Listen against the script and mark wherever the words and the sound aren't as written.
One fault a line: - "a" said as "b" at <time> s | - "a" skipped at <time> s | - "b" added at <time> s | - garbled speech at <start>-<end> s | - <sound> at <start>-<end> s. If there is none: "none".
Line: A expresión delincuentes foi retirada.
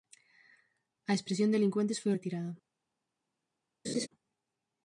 - laugh at 3.8-4.1 s